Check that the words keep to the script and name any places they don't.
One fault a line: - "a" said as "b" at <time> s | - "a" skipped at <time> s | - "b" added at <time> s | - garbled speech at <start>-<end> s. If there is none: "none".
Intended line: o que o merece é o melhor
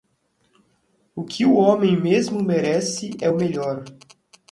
- "homem mesmo" added at 1.5 s